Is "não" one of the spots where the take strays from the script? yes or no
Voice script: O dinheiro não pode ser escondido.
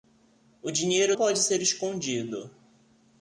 yes